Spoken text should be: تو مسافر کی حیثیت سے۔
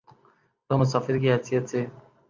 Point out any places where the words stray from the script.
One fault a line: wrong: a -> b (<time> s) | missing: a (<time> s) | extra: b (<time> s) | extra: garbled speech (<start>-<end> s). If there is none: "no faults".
no faults